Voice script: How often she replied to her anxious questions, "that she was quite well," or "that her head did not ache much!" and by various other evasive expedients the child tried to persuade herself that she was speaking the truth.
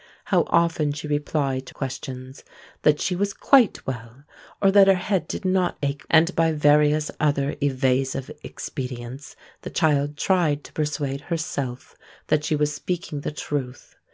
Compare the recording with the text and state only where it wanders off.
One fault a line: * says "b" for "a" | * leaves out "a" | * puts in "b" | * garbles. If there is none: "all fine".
* leaves out "her anxious"
* leaves out "much"